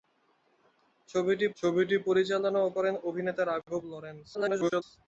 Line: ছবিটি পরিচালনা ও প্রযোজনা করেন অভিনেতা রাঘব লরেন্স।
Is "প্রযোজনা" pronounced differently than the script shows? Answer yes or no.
yes